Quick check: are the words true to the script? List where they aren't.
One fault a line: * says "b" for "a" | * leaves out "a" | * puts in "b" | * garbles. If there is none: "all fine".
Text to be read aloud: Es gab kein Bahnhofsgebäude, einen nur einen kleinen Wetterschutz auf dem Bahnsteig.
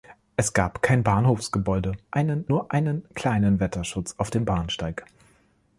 all fine